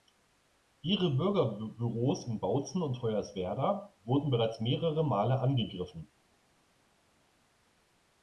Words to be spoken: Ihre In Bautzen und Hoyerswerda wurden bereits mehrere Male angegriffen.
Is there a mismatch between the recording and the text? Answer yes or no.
yes